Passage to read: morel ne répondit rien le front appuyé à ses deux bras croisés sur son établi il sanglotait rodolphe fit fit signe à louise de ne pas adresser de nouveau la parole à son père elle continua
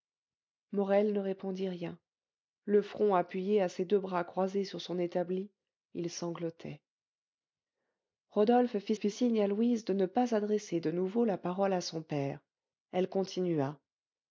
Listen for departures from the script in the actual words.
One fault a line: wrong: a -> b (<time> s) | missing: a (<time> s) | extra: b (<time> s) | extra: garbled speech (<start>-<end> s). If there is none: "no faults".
no faults